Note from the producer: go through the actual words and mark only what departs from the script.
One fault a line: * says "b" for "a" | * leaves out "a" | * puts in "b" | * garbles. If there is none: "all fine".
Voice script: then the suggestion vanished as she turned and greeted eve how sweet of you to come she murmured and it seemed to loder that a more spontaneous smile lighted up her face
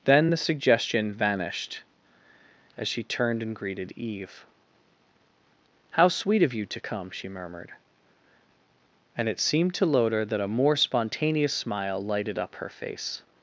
all fine